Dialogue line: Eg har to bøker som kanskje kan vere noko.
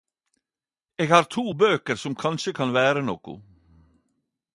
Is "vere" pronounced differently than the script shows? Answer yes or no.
no